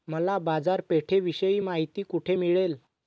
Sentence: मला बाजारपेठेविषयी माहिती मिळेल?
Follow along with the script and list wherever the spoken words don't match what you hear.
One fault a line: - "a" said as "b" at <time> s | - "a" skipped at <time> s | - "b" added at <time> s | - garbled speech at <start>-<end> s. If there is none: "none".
- "कोठे" added at 2.0 s